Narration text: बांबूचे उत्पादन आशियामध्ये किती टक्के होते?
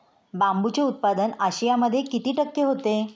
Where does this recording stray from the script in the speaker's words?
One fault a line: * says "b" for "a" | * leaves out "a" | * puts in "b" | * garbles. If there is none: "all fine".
all fine